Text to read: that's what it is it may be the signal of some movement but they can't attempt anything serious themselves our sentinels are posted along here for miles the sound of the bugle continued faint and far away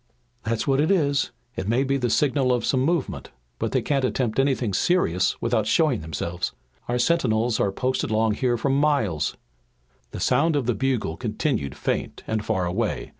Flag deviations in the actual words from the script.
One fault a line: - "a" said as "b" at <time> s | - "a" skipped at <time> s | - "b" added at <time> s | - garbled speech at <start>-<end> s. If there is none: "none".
- "without showing" added at 5.4 s